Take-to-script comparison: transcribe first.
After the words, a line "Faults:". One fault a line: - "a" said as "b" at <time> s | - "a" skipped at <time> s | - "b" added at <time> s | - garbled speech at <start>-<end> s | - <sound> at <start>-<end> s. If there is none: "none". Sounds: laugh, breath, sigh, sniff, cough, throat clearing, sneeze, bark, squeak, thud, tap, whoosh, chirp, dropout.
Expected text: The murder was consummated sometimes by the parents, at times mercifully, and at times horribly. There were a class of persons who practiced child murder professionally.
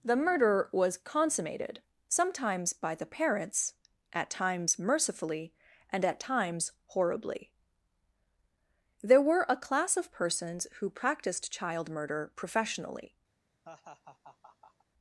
The murder was consummated sometimes by the parents, at times mercifully, and at times horribly. There were a class of persons who practiced child murder professionally.
Faults:
- laugh at 13.6-14.8 s